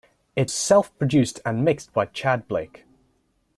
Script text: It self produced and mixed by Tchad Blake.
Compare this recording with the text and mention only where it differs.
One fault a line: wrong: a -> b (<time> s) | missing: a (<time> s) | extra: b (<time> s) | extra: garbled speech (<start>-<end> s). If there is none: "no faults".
no faults